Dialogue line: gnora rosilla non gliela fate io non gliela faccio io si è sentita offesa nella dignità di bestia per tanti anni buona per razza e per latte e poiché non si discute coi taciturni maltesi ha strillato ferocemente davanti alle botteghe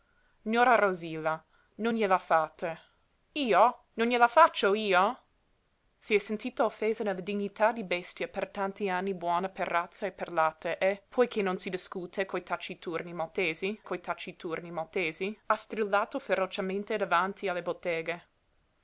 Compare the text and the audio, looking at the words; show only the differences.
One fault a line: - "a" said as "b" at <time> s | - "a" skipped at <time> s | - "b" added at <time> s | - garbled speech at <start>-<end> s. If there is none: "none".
- "coi taciturni maltesi" added at 13.8 s